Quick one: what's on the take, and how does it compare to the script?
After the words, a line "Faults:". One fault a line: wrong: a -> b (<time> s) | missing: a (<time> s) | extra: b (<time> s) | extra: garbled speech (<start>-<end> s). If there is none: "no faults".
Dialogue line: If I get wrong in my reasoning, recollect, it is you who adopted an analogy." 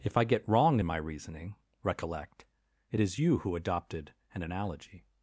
If I get wrong in my reasoning, recollect, it is you who adopted an analogy."
Faults:
no faults